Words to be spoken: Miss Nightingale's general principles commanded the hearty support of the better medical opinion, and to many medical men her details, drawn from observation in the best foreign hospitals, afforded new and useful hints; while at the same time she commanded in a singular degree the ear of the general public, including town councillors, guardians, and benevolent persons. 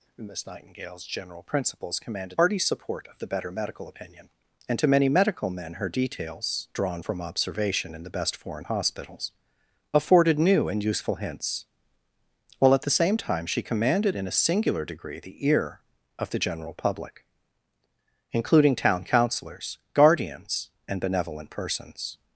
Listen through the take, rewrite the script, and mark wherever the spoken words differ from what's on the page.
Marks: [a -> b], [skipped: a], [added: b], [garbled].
Miss Nightingale's general principles commanded [skipped: the] hearty support of the better medical opinion, and to many medical men her details, drawn from observation in the best foreign hospitals, afforded new and useful hints; while at the same time she commanded in a singular degree the ear of the general public, including town councillors, guardians, and benevolent persons.